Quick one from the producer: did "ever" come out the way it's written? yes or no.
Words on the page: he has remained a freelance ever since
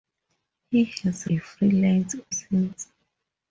no